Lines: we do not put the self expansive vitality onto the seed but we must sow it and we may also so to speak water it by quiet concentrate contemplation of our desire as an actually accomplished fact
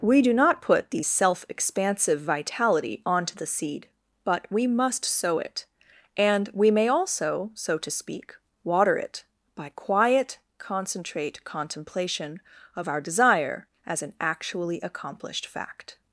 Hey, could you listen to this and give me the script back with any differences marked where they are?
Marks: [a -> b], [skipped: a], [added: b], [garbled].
we do not put the self expansive vitality onto the seed but we must sow it and we may also so to speak water it by quiet concentrate contemplation of our desire as an actually accomplished fact